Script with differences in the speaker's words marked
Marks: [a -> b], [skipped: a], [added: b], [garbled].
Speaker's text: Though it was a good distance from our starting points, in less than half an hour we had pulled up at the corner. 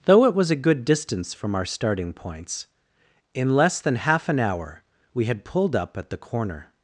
Though it was a good distance from our starting points, in less than half an hour we had pulled up at the corner.